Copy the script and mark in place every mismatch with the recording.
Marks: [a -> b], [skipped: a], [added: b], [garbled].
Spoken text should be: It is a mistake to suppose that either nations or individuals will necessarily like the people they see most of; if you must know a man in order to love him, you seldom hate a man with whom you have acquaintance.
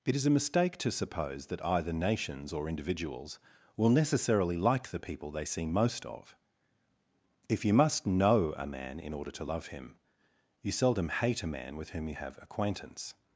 It is a mistake to suppose that either nations or individuals will necessarily like the people they see most of; if you must know a man in order to love him, you seldom hate a man with whom you have acquaintance.